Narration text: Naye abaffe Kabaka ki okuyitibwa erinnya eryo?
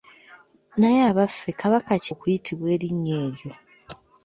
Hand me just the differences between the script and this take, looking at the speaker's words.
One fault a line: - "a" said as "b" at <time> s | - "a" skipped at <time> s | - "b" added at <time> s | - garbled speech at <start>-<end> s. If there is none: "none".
none